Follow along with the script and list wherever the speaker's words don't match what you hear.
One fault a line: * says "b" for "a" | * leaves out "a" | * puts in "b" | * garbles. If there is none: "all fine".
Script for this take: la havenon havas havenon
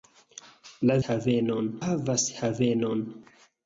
all fine